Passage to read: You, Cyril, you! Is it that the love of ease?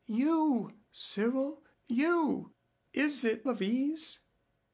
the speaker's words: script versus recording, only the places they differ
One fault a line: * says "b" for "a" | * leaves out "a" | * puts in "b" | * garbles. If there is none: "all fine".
* leaves out "that the love"